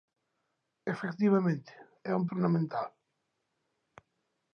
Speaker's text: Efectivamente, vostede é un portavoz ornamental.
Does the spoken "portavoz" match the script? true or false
false